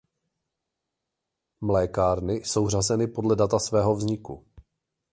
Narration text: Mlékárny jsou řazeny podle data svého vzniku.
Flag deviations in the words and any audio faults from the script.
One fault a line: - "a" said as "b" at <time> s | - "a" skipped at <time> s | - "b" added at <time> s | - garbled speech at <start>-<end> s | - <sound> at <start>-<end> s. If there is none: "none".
none